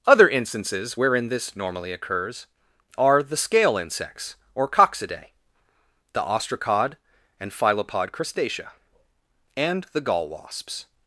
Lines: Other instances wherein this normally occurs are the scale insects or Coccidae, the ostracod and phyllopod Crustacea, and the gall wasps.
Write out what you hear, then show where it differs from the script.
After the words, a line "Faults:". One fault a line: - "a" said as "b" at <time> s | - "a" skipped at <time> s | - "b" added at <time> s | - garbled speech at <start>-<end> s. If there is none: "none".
Other instances wherein this normally occurs are the scale insects or Coccidae, the ostracod and phyllopod Crustacea, and the gall wasps.
Faults:
none